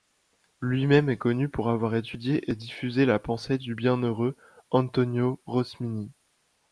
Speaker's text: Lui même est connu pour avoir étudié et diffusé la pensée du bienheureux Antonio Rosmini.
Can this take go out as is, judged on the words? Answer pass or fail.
pass